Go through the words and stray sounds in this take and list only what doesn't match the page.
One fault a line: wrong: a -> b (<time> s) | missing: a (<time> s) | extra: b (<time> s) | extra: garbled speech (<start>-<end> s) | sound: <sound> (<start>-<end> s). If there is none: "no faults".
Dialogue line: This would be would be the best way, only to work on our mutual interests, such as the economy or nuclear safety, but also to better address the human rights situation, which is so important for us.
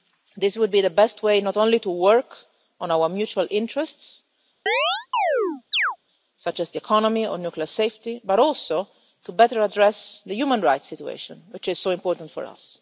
missing: would be (0.8 s)
extra: not (1.4 s)
sound: chirp (4.7-6.0 s)